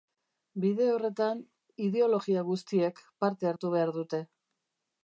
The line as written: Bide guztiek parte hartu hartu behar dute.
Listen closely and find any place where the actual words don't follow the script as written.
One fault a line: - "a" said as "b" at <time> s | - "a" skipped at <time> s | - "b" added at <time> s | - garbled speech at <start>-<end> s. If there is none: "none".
- "horretan ideologia" added at 0.9 s
- "hartu" skipped at 3.7 s